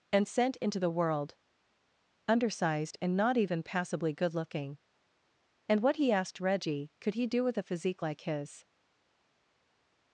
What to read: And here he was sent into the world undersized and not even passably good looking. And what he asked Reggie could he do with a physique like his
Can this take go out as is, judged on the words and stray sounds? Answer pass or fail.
fail